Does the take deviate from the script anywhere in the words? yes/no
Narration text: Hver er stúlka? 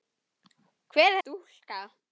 no